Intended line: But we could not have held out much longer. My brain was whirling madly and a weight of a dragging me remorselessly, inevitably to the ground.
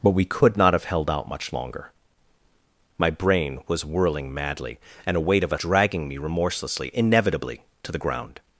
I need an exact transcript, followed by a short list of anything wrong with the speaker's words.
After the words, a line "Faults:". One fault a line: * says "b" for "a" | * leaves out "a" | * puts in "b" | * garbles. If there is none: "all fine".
But we could not have held out much longer. My brain was whirling madly and a weight of a dragging me remorselessly, inevitably to the ground.
Faults:
all fine